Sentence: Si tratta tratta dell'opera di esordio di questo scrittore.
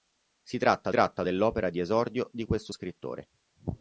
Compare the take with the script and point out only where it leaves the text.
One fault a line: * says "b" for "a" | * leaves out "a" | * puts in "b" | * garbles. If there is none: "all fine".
all fine